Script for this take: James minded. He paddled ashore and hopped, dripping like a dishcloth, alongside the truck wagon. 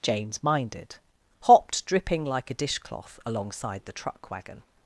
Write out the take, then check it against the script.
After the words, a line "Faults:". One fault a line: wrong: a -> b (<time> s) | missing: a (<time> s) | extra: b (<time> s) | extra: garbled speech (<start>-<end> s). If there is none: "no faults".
James minded. hopped, dripping like a dishcloth, alongside the truck wagon.
Faults:
missing: He paddled ashore and (0.9 s)